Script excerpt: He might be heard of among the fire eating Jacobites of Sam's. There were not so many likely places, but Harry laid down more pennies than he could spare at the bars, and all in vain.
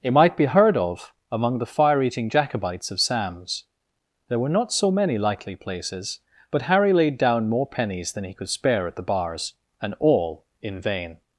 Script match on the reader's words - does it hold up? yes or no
no